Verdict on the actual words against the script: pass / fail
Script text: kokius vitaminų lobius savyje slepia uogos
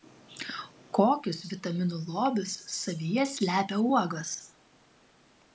pass